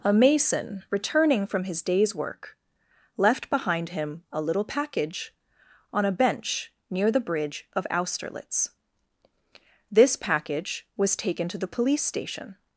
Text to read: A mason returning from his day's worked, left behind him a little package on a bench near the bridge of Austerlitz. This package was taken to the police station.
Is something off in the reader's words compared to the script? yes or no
yes